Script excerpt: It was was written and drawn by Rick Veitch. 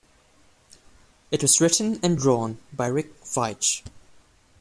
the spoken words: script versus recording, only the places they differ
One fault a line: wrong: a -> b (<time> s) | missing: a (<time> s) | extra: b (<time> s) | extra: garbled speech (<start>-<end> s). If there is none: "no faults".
missing: was (1.6 s)